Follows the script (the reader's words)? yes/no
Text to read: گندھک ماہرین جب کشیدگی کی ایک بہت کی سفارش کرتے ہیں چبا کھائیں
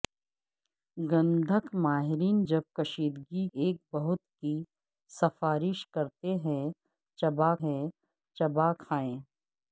no